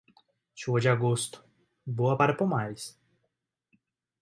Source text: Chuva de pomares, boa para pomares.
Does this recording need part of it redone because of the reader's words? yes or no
yes